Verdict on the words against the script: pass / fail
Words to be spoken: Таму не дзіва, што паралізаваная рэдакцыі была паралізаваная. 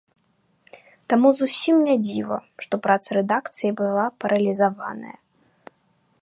fail